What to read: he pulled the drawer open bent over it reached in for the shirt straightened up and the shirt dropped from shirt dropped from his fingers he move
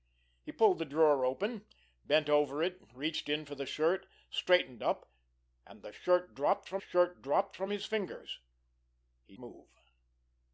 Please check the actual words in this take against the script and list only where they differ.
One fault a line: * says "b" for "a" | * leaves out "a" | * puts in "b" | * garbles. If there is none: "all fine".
all fine